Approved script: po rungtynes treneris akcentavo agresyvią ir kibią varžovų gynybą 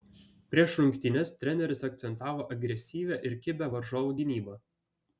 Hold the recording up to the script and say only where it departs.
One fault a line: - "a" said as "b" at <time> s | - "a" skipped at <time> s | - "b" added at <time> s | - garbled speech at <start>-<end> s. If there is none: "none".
- "po" said as "prieš" at 0.5 s